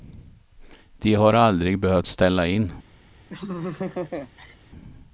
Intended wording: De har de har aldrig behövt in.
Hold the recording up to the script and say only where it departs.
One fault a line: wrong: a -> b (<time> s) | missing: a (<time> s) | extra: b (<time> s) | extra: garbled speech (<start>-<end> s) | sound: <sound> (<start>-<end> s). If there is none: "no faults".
missing: de har (1.3 s)
extra: ställa (2.0 s)
sound: laugh (3.3-4.6 s)